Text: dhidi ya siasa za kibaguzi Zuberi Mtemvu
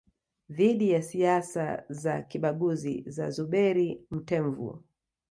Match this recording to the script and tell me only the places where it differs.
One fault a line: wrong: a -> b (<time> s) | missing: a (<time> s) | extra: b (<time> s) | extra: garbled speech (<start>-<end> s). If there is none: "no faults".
extra: za (3.1 s)